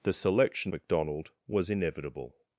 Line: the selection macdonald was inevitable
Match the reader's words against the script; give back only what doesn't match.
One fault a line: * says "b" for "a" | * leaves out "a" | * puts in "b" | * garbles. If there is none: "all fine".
all fine